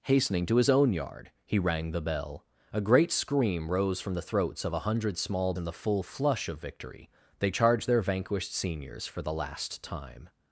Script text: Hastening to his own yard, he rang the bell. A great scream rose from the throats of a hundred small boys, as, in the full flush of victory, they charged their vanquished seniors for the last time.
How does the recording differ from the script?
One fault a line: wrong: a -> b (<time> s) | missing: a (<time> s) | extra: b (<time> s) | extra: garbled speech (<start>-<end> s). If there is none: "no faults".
missing: boys as (5.5 s)